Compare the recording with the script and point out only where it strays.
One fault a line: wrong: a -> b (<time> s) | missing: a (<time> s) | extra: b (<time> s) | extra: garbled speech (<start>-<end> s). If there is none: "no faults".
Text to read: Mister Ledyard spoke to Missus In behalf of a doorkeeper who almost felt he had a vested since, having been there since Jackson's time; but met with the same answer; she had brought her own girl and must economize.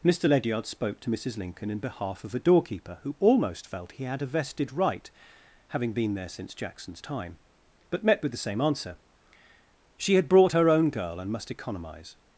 extra: Lincoln (1.4 s)
wrong: since -> right (4.7 s)